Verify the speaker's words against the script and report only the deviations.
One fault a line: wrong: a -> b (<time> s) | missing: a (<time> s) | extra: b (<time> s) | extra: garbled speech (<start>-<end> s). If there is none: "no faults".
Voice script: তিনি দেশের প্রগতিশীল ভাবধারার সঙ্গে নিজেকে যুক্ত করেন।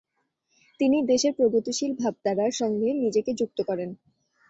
no faults